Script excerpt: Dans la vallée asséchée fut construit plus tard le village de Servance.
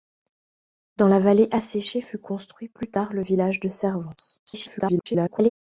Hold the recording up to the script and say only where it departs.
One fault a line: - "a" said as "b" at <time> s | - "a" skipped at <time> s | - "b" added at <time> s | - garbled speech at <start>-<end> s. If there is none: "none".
- garbled speech at 4.5-5.5 s